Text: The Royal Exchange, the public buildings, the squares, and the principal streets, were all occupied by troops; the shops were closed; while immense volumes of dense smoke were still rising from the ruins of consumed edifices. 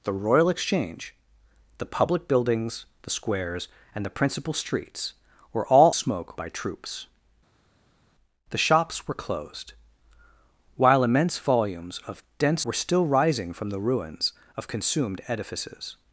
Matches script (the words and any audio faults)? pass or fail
fail